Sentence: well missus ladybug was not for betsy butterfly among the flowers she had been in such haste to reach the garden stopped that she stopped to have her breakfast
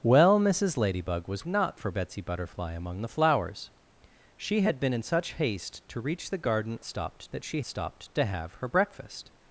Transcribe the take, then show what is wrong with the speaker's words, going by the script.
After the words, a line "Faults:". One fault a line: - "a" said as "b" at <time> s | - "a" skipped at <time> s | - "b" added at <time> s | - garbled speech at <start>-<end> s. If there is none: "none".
well missus ladybug was not for betsy butterfly among the flowers she had been in such haste to reach the garden stopped that she stopped to have her breakfast
Faults:
none